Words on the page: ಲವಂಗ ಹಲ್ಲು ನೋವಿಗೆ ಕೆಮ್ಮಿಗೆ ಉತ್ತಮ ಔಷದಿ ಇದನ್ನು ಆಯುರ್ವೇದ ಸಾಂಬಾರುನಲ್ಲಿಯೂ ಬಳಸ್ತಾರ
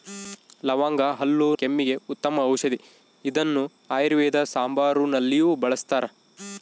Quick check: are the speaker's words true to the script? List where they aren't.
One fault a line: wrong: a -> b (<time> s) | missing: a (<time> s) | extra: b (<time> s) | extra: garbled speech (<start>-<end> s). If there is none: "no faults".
missing: ನೋವಿಗೆ (1.5 s)